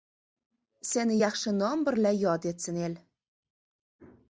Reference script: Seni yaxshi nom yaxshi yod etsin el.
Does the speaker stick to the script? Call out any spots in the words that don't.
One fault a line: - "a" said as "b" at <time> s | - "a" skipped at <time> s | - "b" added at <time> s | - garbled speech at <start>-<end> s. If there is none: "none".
- "yaxshi" said as "birla" at 1.9 s